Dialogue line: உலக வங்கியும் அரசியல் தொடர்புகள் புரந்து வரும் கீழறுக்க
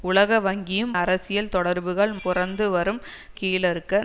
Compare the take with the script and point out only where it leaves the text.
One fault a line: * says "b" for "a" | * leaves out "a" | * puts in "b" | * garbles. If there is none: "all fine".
all fine